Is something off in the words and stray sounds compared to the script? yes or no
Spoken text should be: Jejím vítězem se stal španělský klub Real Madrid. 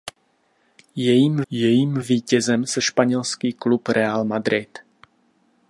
yes